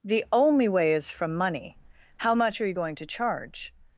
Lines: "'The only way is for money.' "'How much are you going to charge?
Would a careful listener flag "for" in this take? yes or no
yes